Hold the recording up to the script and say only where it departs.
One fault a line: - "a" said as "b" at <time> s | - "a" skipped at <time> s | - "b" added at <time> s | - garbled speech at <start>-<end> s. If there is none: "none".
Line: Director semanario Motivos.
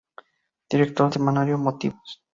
none